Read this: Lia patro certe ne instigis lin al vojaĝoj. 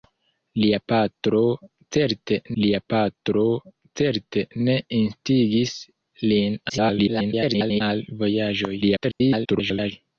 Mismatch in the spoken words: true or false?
true